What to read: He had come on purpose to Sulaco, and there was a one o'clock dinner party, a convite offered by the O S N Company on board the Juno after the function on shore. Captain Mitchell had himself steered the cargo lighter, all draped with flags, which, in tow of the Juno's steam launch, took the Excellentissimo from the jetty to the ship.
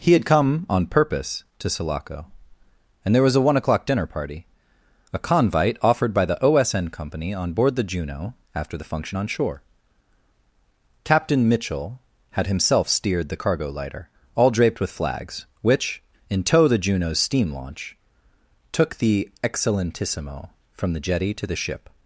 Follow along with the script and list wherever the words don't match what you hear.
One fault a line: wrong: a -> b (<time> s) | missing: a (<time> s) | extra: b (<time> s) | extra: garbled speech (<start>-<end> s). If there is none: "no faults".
missing: of (16.7 s)